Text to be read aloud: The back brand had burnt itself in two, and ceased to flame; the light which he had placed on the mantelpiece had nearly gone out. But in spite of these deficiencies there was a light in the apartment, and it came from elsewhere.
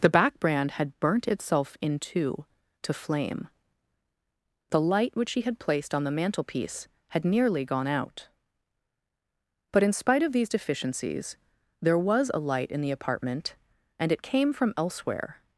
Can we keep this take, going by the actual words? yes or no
no